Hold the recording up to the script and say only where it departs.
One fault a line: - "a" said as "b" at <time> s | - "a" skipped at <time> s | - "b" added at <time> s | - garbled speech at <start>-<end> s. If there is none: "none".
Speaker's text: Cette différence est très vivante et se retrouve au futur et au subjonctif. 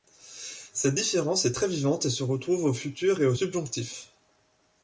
none